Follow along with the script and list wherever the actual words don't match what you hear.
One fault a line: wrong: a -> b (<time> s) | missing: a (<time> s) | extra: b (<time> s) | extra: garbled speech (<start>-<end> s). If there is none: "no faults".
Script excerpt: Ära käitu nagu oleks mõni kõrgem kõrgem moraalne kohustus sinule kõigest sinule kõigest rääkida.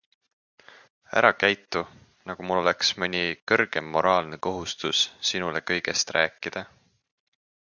extra: mul (2.5 s)
missing: kõrgem (3.9 s)
missing: sinule kõigest (6.2 s)